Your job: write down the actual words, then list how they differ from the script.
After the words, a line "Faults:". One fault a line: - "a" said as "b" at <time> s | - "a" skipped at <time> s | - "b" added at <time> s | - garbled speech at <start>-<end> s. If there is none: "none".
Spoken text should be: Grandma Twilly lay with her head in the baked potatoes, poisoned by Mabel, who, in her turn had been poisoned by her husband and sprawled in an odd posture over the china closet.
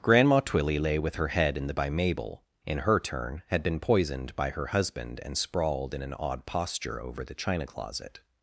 Grandma Twilly lay with her head in the by Mabel, in her turn had been poisoned by her husband and sprawled in an odd posture over the china closet.
Faults:
- "baked potatoes poisoned" skipped at 1.8 s
- "who" skipped at 2.4 s